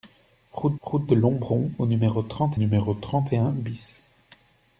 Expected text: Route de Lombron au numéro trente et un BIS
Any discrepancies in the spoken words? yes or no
yes